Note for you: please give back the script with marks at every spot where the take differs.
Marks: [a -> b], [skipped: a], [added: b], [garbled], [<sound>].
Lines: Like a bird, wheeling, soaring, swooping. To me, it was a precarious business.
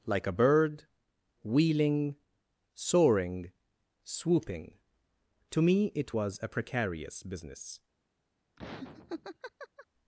Like a bird, wheeling, soaring, swooping. To me, it was a precarious business. [laugh]